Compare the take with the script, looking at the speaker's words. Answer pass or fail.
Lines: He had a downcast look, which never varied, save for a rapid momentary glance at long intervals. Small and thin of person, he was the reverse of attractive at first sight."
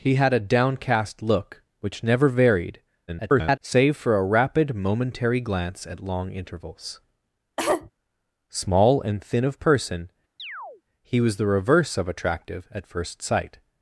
fail